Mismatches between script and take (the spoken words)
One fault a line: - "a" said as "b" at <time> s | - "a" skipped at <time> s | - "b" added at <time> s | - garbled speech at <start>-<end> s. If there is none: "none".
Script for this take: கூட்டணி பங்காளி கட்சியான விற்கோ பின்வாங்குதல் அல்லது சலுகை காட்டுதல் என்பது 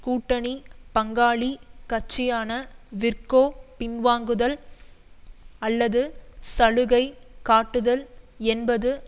none